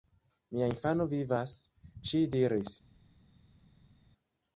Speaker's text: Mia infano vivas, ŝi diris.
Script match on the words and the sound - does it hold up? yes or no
yes